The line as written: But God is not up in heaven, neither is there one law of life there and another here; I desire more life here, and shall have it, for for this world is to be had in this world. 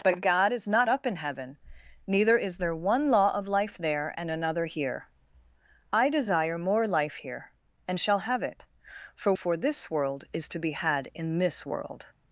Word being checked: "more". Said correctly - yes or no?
yes